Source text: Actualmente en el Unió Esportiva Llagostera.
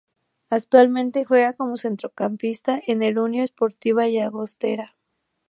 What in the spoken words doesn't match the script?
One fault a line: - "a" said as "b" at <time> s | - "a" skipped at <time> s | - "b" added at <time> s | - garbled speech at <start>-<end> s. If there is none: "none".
- "juega como centrocampista" added at 1.2 s